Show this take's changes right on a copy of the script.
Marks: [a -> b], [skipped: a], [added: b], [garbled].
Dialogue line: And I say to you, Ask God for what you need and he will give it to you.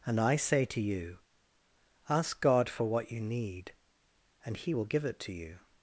And I say to you, Ask God for what you need and he will give it to you.